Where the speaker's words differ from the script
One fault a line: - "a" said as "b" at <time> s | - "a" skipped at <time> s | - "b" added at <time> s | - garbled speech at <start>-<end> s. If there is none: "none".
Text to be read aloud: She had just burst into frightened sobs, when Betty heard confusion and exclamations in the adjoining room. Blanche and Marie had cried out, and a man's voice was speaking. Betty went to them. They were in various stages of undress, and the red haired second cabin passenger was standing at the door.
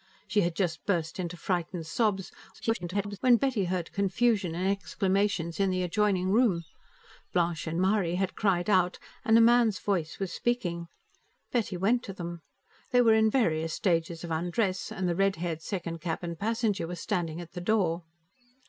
- garbled speech at 2.5-3.2 s